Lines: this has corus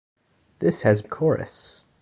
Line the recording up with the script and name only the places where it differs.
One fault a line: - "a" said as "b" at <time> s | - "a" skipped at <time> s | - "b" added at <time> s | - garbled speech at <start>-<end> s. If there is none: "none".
none